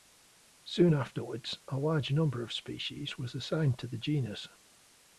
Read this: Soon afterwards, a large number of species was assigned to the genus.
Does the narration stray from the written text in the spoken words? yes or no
no